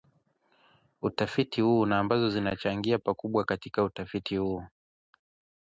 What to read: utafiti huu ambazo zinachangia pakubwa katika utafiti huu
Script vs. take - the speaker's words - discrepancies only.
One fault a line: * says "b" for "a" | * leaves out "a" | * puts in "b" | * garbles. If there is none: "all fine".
* puts in "na"